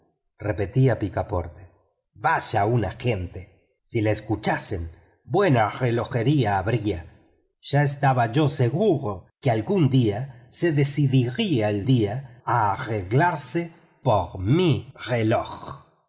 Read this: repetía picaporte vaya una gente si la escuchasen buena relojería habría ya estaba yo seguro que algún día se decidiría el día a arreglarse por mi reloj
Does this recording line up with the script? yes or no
yes